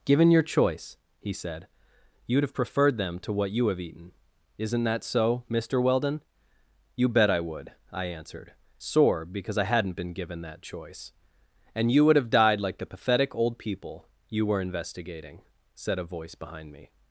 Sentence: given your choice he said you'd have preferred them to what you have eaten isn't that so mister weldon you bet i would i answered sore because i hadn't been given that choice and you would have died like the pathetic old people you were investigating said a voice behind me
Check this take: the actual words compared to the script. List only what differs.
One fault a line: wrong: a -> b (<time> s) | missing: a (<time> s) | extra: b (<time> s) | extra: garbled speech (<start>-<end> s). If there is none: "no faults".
no faults